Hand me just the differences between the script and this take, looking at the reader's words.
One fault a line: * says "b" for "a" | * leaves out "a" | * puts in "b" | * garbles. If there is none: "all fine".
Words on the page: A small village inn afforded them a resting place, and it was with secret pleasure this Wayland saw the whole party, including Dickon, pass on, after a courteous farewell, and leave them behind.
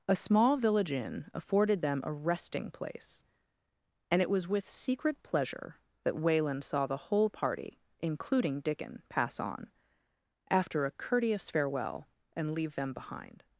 * says "that" for "this"